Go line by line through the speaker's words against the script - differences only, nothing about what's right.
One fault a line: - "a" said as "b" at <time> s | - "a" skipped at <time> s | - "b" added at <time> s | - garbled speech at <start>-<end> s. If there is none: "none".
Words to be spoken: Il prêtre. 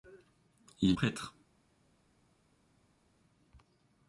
none